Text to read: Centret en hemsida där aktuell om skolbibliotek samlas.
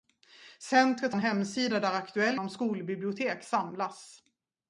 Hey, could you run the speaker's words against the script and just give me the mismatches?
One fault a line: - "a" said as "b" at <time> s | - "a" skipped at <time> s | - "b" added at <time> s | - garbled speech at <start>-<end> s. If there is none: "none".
none